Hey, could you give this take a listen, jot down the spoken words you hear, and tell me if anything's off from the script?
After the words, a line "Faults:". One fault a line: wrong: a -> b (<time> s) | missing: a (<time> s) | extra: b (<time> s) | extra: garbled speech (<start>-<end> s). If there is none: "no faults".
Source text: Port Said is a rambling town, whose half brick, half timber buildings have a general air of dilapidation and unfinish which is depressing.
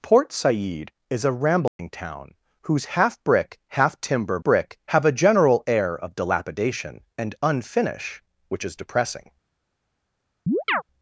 Port Said is a rambling town, whose half brick, half timber brick have a general air of dilapidation and unfinish which is depressing.
Faults:
wrong: buildings -> brick (4.4 s)